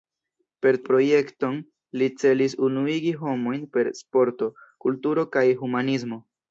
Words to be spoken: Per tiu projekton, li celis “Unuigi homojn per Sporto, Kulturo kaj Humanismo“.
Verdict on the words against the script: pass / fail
fail